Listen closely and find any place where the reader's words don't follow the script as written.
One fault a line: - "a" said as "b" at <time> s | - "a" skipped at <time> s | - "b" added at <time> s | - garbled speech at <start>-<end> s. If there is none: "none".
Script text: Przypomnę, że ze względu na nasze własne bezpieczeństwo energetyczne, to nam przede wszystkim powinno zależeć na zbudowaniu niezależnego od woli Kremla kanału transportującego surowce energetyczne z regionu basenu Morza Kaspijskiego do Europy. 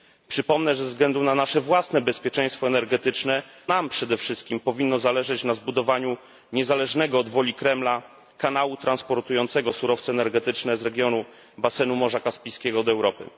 - "to" skipped at 3.4 s